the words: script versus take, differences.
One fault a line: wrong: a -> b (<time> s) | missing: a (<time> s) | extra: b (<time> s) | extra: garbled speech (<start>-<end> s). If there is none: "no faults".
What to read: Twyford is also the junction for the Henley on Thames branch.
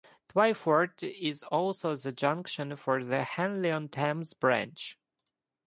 no faults